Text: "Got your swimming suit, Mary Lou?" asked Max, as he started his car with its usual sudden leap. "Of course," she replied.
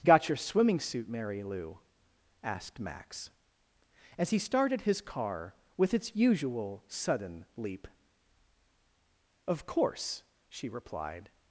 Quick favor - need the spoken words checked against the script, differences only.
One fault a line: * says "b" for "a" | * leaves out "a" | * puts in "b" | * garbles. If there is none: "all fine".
all fine